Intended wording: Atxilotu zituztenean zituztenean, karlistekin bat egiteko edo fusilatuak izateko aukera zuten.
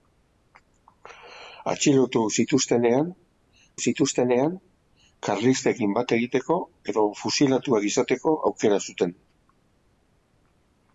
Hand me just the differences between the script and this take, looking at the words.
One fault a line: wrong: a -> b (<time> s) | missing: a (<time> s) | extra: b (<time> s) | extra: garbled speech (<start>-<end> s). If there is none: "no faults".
no faults